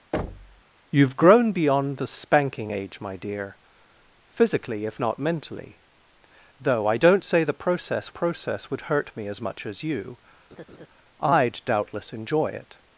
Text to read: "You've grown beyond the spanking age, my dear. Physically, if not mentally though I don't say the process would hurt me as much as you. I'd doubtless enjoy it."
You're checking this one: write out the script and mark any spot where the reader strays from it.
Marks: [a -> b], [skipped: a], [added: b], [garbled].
"You've grown beyond the spanking age, my dear. Physically, if not mentally though I don't say the process [added: process] would hurt me as much as you. I'd doubtless enjoy it."